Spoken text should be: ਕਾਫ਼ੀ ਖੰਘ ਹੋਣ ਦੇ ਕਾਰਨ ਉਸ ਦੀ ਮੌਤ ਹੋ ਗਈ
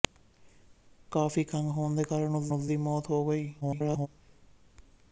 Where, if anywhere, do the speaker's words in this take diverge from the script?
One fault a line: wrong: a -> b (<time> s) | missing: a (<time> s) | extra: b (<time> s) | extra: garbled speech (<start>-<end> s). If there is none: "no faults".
extra: ਉਸ (2.5 s)
extra: garbled speech (3.6-4.1 s)